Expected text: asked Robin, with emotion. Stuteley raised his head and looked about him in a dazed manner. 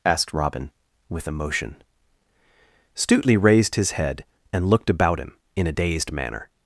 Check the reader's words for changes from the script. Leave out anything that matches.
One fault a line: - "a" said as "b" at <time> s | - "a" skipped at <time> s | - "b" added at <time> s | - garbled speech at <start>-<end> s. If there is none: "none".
none